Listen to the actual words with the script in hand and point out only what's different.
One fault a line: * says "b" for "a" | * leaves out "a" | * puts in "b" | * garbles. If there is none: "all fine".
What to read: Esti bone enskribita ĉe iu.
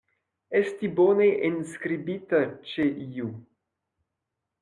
all fine